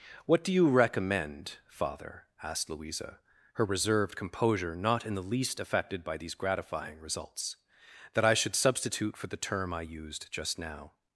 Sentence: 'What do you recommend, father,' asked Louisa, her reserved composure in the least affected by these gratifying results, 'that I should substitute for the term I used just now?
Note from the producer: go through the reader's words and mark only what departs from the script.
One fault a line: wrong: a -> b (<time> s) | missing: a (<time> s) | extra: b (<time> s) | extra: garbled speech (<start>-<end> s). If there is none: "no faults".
extra: not (4.8 s)